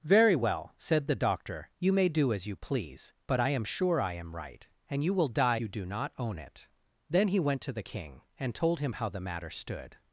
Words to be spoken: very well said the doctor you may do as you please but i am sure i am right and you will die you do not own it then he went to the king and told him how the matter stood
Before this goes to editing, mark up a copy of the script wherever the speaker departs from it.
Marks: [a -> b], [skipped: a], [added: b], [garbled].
very well said the doctor you may do as you please but i am sure i am right and you will die you do not own it then he went to the king and told him how the matter stood